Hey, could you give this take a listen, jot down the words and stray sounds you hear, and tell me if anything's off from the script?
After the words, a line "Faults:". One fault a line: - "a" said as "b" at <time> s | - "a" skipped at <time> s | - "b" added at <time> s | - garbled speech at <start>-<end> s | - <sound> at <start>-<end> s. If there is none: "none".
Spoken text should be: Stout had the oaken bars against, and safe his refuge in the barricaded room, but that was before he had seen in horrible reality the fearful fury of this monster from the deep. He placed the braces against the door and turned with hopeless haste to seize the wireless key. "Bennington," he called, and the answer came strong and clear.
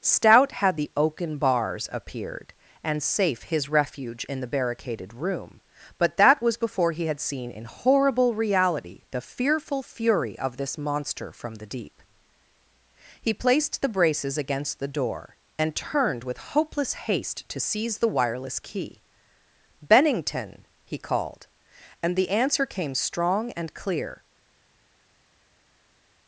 Stout had the oaken bars appeared, and safe his refuge in the barricaded room, but that was before he had seen in horrible reality the fearful fury of this monster from the deep. He placed the braces against the door and turned with hopeless haste to seize the wireless key. "Bennington," he called, and the answer came strong and clear.
Faults:
- "against" said as "appeared" at 1.9 s